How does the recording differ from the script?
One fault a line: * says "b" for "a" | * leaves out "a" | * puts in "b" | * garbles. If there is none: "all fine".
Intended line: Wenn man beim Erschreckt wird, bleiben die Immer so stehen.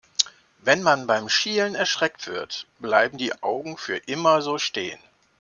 * puts in "Schielen"
* puts in "Augen für"